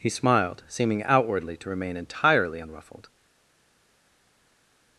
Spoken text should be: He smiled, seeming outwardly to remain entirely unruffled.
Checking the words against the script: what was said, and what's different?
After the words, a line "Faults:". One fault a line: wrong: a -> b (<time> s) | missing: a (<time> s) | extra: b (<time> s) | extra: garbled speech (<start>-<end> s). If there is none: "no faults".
He smiled, seeming outwardly to remain entirely unruffled.
Faults:
no faults